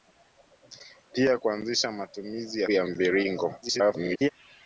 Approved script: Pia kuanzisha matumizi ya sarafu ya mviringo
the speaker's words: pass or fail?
fail